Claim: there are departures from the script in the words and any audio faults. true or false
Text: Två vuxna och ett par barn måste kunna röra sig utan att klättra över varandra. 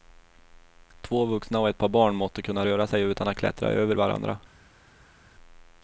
false